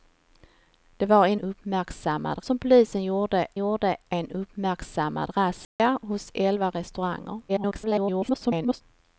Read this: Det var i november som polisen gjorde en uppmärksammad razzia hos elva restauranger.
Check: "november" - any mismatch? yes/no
yes